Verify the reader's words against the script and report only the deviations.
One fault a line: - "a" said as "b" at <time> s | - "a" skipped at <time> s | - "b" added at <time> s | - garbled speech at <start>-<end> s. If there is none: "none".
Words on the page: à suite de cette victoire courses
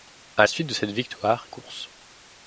none